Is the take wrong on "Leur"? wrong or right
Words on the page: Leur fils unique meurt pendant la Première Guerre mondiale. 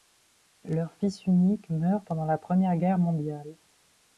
right